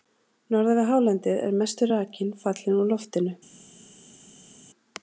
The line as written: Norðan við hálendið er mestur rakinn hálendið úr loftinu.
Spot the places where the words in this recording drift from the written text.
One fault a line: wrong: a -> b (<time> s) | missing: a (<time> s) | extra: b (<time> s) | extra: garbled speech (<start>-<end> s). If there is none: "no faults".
wrong: hálendið -> fallinn (2.5 s)